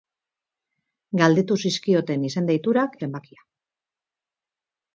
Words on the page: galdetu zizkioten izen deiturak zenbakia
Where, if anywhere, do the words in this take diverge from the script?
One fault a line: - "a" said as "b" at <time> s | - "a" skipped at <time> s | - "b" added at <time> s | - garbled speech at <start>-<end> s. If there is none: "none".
none